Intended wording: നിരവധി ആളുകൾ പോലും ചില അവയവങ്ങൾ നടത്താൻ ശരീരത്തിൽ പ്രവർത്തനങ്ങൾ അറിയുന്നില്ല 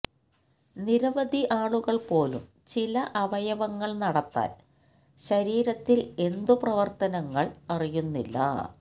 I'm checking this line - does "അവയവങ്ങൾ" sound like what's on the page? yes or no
yes